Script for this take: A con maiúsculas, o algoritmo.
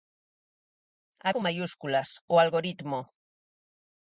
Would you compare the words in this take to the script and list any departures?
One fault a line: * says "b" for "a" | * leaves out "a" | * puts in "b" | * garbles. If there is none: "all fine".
all fine